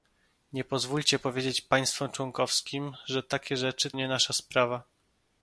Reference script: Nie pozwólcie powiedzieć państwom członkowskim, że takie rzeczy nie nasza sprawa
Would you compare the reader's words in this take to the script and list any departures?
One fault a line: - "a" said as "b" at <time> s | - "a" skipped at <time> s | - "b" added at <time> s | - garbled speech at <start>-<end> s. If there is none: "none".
none